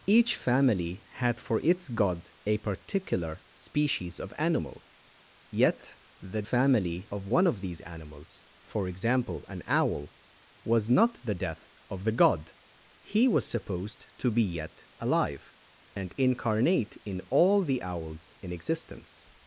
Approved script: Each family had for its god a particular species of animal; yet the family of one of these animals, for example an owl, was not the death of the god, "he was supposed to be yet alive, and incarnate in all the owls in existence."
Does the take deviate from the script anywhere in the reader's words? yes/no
no